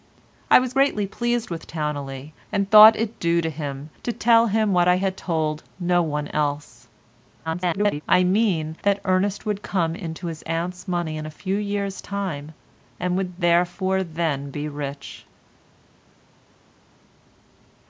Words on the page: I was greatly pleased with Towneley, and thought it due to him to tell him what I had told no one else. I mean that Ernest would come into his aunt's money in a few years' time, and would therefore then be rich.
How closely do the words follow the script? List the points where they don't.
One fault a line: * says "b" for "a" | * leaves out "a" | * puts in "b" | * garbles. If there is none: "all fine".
* garbles